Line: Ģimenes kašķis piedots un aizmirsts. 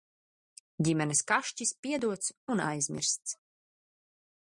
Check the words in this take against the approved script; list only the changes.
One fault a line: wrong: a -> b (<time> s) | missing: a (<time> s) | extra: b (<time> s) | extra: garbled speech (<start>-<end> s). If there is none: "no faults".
no faults